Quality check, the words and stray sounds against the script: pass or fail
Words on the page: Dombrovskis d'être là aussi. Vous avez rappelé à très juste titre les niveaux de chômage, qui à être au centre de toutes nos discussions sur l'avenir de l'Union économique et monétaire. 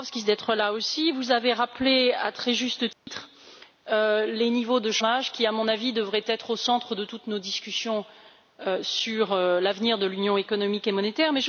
fail